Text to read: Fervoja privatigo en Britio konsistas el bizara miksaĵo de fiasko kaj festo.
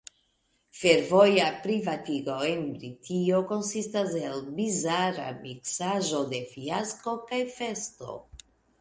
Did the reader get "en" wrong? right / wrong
right